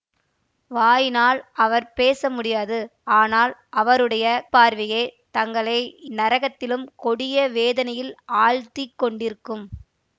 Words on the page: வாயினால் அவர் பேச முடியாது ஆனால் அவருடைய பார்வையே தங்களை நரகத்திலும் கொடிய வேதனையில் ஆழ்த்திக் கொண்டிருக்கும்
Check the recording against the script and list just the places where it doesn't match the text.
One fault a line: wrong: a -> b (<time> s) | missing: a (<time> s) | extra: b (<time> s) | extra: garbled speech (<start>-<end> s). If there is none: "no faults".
no faults